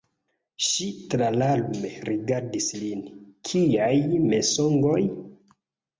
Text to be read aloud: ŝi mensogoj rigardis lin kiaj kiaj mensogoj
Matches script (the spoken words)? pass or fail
fail